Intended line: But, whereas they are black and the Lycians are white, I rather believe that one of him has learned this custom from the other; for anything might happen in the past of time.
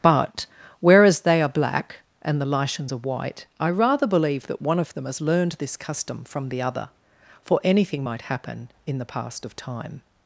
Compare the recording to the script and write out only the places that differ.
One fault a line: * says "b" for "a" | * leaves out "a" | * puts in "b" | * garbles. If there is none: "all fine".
* says "them" for "him"